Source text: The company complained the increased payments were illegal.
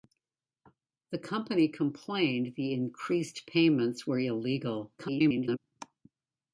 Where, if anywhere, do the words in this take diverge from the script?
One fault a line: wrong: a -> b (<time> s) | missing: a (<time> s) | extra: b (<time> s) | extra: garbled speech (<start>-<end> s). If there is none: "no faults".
extra: garbled speech (5.0-5.6 s)